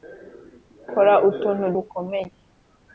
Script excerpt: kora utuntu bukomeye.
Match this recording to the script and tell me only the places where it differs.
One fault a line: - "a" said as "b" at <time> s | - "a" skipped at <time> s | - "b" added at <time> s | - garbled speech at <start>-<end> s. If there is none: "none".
none